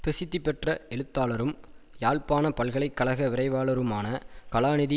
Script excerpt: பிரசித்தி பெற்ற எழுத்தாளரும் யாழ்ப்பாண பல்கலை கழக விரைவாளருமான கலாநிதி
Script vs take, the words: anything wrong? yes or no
no